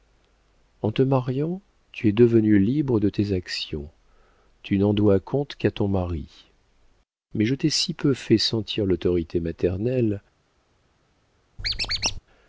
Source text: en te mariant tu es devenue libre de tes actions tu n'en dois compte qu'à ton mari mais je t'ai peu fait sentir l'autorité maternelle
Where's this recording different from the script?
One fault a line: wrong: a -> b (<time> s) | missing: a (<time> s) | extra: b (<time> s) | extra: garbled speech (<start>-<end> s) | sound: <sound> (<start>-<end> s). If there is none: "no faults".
extra: si (7.7 s)
sound: squeak (11.6-12.2 s)